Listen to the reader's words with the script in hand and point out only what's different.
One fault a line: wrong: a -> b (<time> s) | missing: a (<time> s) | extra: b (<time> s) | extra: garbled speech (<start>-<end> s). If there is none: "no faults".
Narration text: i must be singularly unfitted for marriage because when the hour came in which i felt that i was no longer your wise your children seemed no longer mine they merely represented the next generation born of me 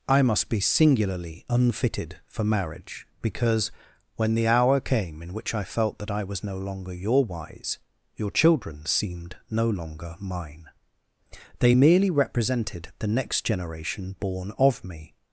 no faults